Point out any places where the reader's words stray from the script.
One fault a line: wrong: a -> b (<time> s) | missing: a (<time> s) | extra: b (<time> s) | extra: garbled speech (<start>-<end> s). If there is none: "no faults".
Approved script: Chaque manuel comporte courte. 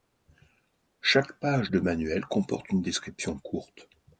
extra: page de (1.3 s)
extra: une description (2.7 s)